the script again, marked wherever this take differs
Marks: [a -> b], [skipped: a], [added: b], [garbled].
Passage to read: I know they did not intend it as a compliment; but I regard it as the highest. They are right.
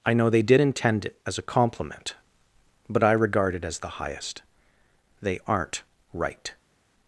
I know they did [skipped: not] intend it as a compliment; but I regard it as the highest. They [are -> aren't] right.